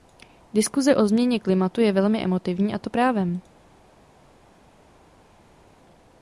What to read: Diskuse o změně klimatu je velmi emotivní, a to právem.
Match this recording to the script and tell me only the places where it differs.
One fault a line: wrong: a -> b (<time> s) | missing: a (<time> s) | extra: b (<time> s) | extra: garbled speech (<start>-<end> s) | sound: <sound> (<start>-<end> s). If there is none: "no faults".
no faults